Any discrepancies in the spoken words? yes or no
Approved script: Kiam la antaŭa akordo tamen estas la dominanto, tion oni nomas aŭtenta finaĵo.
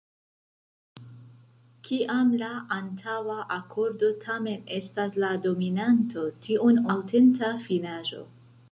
yes